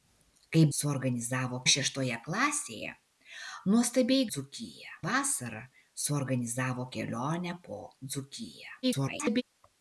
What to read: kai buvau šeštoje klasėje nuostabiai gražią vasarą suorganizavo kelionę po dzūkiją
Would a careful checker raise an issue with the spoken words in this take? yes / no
yes